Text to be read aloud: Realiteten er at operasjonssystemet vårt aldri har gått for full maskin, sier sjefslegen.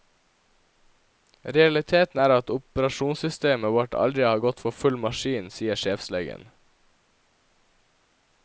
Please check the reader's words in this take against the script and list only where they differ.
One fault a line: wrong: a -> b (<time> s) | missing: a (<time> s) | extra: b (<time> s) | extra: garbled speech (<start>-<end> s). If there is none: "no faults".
no faults